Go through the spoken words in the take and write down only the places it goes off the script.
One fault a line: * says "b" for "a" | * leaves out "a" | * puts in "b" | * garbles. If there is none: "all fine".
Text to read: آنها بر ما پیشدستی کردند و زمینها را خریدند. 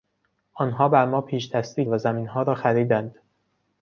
* leaves out "کردند"